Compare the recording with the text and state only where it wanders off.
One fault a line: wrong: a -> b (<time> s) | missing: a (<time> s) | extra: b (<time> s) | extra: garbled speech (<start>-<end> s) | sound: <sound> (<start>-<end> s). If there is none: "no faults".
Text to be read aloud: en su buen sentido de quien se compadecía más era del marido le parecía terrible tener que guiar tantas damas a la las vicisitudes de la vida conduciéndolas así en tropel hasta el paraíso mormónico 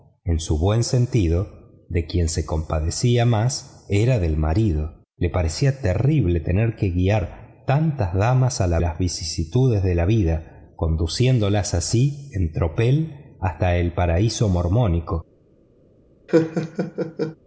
sound: laugh (16.3-17.4 s)